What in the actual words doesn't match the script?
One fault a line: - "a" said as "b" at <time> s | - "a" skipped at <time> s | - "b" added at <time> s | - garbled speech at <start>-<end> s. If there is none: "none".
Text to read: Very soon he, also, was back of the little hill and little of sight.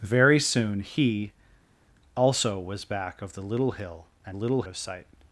none